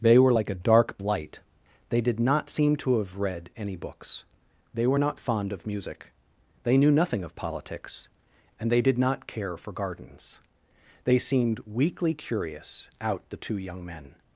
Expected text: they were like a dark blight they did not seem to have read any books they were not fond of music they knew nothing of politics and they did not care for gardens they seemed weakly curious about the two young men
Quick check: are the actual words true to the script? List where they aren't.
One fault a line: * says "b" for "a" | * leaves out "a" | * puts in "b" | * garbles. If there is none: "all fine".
* says "out" for "about"